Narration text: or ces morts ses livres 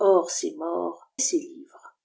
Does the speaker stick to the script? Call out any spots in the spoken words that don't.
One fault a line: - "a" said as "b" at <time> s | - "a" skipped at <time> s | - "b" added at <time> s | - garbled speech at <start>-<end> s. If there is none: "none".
none